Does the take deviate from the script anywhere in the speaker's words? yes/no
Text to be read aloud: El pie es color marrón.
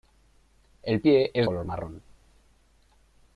no